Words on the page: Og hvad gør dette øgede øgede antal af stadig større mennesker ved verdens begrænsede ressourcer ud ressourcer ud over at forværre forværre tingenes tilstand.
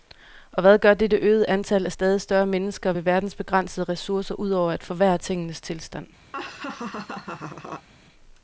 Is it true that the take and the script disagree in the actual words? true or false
true